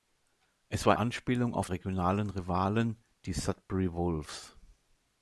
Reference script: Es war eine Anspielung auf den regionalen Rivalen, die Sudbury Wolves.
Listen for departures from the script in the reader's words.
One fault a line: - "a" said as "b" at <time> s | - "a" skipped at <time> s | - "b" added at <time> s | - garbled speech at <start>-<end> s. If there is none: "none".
- "eine" skipped at 0.9 s
- "den" skipped at 1.7 s